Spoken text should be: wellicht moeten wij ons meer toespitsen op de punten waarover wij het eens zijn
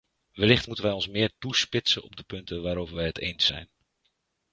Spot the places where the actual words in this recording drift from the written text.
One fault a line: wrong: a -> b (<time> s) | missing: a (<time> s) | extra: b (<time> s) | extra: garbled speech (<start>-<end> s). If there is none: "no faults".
no faults